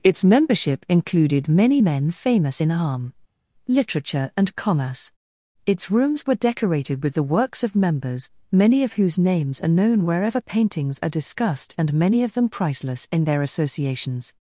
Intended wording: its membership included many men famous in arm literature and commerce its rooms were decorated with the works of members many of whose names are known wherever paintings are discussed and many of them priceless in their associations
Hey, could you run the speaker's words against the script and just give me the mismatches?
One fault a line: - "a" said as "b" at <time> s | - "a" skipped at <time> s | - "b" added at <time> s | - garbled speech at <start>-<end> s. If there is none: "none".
none